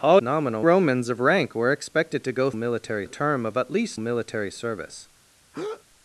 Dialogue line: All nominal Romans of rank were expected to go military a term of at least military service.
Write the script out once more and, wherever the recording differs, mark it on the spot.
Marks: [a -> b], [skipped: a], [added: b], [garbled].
All nominal Romans of rank were expected to go military a term of at least military service.